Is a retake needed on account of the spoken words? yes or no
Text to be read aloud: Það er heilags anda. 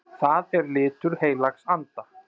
yes